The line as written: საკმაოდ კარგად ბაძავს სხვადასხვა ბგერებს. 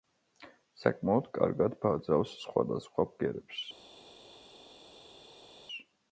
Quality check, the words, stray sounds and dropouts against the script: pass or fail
pass